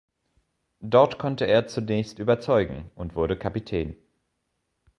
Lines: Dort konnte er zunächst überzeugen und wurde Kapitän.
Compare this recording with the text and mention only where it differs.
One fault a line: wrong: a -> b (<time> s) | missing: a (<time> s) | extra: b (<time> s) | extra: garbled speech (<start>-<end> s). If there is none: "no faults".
no faults